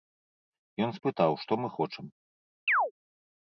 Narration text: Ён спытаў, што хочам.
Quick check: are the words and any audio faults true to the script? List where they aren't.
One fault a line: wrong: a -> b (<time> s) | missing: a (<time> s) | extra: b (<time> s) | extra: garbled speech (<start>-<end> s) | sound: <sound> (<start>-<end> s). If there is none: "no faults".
extra: мы (1.6 s)
sound: chirp (2.7-2.9 s)